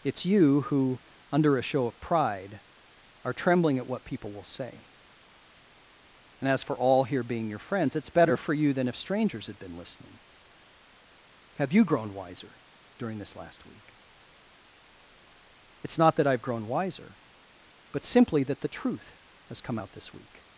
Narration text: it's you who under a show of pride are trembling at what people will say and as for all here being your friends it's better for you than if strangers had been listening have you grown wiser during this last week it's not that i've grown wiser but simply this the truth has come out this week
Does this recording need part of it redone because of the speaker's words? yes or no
yes